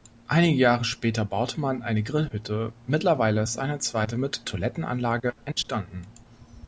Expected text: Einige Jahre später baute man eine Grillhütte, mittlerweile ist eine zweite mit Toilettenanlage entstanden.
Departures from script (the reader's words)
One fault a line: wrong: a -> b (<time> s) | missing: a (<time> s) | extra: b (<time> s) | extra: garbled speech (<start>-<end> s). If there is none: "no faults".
no faults